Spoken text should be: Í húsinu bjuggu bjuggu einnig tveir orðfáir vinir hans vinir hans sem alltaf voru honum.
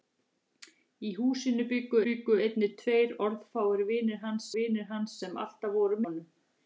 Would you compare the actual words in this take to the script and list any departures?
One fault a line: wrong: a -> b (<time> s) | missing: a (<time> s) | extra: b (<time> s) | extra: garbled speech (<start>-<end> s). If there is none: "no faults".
no faults